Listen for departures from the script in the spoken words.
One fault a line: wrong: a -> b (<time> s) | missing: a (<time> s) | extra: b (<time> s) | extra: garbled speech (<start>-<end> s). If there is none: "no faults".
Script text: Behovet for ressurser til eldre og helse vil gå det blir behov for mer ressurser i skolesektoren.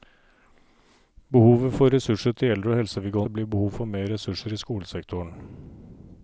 no faults